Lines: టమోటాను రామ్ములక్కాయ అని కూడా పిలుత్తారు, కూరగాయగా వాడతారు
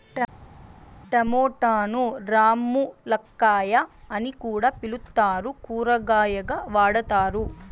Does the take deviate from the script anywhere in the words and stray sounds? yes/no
no